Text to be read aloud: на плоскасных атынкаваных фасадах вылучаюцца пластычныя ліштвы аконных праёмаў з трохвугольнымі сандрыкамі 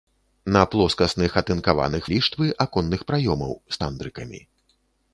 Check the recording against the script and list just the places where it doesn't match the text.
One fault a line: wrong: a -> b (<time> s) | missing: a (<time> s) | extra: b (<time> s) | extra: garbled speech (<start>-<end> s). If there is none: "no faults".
missing: фасадах вылучаюцца пластычныя (2.1 s)
missing: трохвугольнымі (3.8 s)